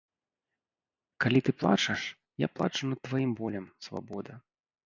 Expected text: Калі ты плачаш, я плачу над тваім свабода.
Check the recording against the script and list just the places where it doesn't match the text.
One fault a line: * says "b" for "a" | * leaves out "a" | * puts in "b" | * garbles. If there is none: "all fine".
* puts in "болем"